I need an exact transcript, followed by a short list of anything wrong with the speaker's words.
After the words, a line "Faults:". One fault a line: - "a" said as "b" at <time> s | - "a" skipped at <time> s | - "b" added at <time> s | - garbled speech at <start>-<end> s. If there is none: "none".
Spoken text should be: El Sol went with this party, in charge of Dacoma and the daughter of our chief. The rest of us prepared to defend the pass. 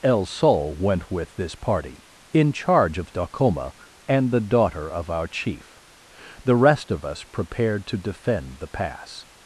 El Sol went with this party, in charge of Dacoma and the daughter of our chief. The rest of us prepared to defend the pass.
Faults:
none